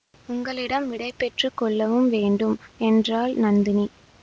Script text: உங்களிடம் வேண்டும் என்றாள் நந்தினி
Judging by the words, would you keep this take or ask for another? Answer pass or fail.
fail